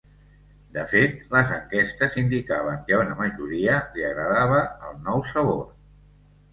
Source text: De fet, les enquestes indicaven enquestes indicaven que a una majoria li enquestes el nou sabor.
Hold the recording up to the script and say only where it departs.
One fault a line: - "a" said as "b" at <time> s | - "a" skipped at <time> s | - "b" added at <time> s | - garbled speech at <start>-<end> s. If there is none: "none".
- "enquestes indicaven" skipped at 2.9 s
- "enquestes" said as "agradava" at 4.1 s